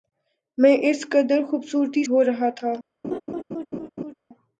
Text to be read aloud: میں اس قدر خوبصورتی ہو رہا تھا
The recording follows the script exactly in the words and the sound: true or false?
false